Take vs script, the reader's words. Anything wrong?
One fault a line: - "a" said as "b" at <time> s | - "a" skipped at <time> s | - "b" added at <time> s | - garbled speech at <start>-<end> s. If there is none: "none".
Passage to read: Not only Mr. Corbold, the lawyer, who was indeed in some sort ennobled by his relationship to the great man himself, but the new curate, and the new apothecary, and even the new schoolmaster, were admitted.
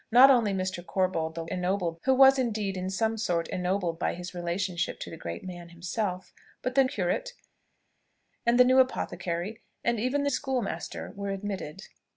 - "lawyer" said as "ennobled" at 1.5 s
- "new" skipped at 6.8 s
- "new" skipped at 10.3 s